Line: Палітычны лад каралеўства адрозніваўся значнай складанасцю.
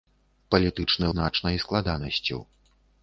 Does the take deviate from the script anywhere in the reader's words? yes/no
yes